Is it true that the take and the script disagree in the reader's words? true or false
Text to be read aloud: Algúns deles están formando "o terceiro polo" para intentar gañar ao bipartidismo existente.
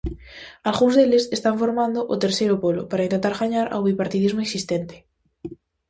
false